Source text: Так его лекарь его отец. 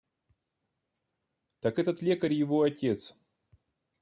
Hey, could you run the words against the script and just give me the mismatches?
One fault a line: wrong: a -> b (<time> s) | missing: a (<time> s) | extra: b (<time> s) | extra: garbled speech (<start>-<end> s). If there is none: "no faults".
wrong: его -> этот (1.8 s)